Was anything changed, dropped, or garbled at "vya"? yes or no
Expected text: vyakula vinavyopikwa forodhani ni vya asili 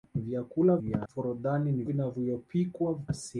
yes